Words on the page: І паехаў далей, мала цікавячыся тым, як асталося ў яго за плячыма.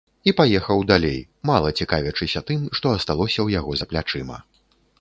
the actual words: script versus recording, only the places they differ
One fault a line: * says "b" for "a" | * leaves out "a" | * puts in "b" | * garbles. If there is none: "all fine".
* says "што" for "як"